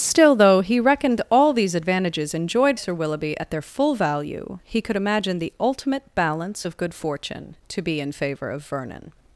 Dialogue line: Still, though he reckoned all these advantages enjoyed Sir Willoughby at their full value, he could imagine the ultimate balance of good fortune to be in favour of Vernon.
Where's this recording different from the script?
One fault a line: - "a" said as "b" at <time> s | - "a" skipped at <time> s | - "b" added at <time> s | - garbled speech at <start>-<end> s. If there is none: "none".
none